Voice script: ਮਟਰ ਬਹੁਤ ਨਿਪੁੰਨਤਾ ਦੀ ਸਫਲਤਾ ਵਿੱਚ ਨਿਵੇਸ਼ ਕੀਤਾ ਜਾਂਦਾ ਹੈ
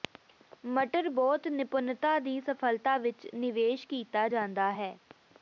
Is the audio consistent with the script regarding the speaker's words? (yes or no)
yes